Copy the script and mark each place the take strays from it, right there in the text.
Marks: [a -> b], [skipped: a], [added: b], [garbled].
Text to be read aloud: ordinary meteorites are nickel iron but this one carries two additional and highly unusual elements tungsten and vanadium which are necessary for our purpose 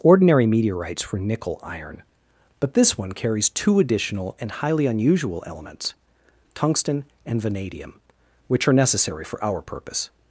ordinary meteorites [are -> were] nickel iron but this one carries two additional and highly unusual elements tungsten and vanadium which are necessary for our purpose